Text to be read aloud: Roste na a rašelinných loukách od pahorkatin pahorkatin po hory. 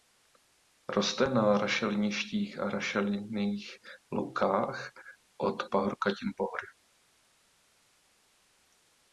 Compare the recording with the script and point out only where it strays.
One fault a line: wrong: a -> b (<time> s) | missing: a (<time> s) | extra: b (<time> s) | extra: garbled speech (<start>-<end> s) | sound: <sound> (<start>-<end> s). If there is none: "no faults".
extra: rašeliništích (1.6 s)
missing: pahorkatin (6.3 s)